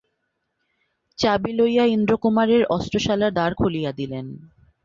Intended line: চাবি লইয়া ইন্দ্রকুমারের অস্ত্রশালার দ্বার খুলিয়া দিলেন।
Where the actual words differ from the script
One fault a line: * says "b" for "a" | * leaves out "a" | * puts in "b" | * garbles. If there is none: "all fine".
all fine